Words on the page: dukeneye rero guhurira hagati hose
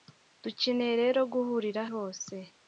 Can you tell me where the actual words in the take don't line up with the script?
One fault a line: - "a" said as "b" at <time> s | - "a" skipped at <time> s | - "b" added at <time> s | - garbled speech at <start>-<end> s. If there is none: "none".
- "hagati" skipped at 1.8 s